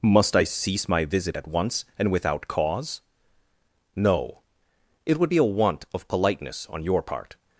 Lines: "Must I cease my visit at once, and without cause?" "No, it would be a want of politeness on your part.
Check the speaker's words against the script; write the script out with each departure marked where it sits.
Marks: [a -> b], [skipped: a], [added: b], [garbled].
"Must I cease my visit at once, and without cause?" "No, it would be a want of politeness on your part.